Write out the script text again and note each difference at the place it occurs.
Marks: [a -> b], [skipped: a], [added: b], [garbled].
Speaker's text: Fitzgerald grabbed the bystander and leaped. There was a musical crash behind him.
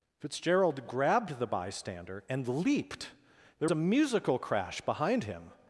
Fitzgerald grabbed the bystander and leaped. There [skipped: was] a musical crash behind him.